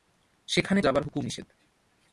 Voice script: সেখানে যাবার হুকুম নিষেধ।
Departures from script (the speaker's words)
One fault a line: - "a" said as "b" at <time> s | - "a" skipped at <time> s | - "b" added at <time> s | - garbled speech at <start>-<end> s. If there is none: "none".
none